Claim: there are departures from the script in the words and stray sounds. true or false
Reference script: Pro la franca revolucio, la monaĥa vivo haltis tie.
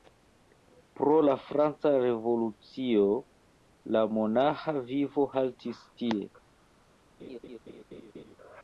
true